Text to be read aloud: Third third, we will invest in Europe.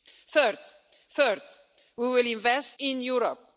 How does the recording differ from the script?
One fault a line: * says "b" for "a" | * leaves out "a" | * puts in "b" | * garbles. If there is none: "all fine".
all fine